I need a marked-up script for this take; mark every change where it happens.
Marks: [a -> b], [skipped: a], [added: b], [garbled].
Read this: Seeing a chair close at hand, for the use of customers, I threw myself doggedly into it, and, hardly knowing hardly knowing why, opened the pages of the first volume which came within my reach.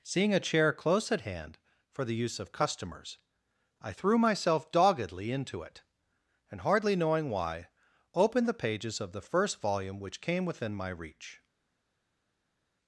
Seeing a chair close at hand, for the use of customers, I threw myself doggedly into it, and, hardly knowing [skipped: hardly knowing] why, opened the pages of the first volume which came within my reach.